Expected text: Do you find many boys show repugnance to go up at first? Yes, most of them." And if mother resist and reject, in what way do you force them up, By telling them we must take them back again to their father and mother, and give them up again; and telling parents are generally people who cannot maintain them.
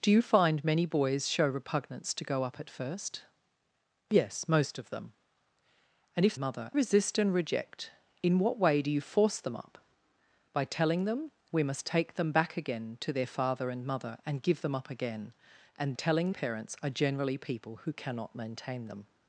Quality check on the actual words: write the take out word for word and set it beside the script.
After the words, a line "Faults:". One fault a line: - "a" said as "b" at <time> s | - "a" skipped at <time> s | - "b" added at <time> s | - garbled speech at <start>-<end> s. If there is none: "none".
Do you find many boys show repugnance to go up at first? Yes, most of them." And if mother resist and reject, in what way do you force them up, By telling them we must take them back again to their father and mother, and give them up again; and telling parents are generally people who cannot maintain them.
Faults:
none